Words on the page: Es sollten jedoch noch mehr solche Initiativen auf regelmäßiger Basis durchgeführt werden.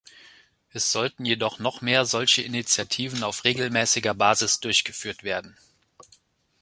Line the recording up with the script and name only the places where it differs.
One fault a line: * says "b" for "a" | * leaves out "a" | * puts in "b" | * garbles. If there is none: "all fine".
all fine